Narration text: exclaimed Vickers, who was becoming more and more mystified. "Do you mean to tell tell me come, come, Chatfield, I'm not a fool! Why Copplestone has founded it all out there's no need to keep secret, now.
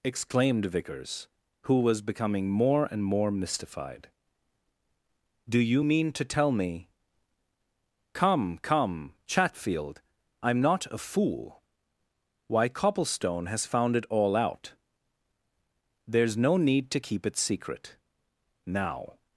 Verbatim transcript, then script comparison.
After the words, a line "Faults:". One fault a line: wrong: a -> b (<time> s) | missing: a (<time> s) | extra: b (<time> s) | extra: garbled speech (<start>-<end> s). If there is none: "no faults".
exclaimed Vickers, who was becoming more and more mystified. "Do you mean to tell me come, come, Chatfield, I'm not a fool! Why Copplestone has found it all out there's no need to keep it secret, now.
Faults:
missing: tell (6.5 s)
wrong: founded -> found (13.7 s)
extra: it (17.3 s)